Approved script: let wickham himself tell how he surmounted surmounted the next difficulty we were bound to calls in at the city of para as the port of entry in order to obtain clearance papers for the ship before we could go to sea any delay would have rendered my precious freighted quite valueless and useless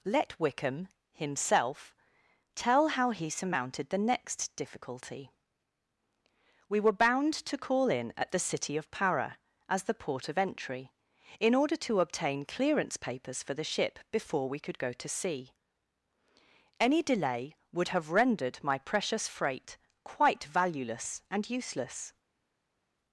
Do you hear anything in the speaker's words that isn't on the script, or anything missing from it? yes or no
yes